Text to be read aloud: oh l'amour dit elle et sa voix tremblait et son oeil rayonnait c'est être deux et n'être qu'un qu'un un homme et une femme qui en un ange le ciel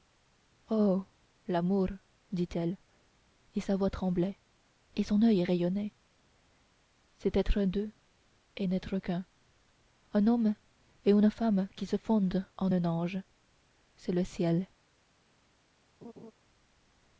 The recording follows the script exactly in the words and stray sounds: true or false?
false